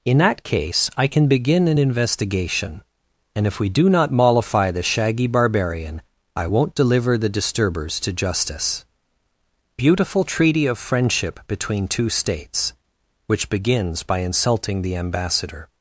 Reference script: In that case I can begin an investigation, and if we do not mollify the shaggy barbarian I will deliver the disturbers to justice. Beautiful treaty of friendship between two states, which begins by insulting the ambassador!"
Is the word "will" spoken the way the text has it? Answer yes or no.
no